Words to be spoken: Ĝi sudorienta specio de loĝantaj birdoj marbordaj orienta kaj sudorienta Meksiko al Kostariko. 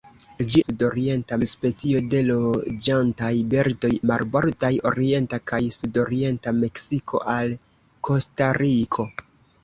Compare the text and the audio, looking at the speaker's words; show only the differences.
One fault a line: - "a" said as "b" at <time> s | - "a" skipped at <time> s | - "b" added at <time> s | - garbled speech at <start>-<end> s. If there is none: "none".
none